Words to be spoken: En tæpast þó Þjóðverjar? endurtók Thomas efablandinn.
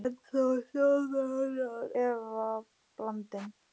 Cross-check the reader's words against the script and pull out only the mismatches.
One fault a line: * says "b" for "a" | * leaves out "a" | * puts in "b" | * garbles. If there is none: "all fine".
* leaves out "tæpast"
* leaves out "endurtók Thomas"